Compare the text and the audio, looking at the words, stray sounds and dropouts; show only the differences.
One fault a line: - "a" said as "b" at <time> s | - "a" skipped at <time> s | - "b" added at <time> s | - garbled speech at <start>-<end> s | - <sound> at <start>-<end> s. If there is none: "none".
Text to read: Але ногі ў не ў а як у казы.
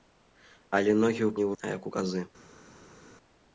none